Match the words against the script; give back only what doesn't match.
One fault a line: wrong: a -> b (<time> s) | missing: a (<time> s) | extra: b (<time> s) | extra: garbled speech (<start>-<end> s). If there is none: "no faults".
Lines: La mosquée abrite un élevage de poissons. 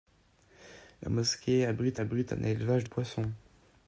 extra: abrite (2.0 s)
missing: de (2.9 s)